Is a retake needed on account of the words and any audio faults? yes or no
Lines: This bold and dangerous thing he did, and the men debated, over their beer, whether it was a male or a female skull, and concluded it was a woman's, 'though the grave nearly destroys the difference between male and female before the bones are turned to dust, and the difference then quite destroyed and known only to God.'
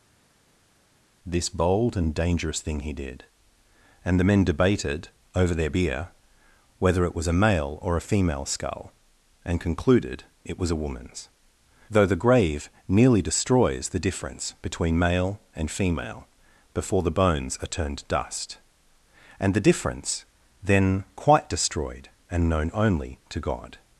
yes